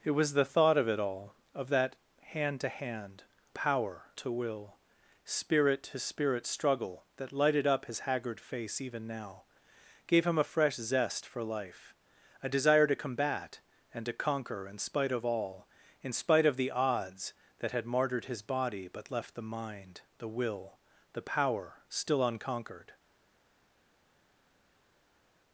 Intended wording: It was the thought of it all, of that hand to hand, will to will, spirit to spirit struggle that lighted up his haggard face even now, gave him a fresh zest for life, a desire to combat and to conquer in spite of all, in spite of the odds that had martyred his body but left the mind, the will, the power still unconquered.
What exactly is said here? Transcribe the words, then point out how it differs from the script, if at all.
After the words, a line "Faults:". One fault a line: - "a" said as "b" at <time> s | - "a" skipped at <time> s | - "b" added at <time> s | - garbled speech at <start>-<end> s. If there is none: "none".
It was the thought of it all, of that hand to hand, power to will, spirit to spirit struggle that lighted up his haggard face even now, gave him a fresh zest for life, a desire to combat and to conquer in spite of all, in spite of the odds that had martyred his body but left the mind, the will, the power still unconquered.
Faults:
- "will" said as "power" at 3.5 s